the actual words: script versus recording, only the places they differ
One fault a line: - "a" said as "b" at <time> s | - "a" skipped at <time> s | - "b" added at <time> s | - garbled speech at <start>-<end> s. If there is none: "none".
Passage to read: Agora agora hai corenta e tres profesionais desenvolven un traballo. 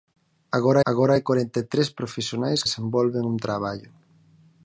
none